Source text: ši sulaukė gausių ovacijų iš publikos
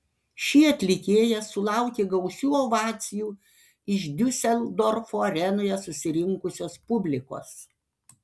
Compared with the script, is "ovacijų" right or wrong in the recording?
right